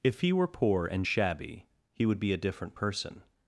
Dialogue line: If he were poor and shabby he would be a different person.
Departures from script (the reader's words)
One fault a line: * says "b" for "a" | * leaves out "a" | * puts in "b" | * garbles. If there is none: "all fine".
all fine